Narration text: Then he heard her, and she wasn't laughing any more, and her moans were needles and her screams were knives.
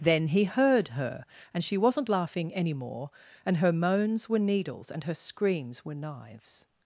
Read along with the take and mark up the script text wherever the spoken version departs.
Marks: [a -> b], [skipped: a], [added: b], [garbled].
Then he heard her, and she wasn't laughing any more, and her moans were needles and her screams were knives.